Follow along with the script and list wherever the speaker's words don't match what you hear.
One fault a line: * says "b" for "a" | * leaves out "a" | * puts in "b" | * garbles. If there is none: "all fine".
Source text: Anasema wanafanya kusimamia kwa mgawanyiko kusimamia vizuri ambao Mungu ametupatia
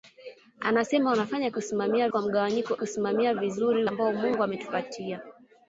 all fine